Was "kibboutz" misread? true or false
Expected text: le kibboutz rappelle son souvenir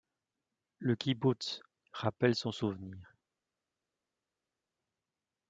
false